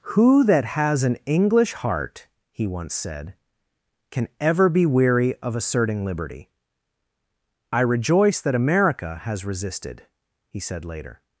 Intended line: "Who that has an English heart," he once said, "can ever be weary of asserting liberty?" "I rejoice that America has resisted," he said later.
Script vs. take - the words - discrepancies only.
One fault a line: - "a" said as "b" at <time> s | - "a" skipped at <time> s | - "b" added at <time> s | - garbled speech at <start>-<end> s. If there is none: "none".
none